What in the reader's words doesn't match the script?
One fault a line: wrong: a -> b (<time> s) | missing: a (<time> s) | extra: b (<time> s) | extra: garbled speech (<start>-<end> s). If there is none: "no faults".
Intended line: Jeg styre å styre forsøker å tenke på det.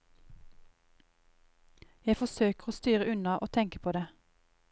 wrong: styre -> forsøker (2.2 s)
wrong: forsøker -> unna (3.1 s)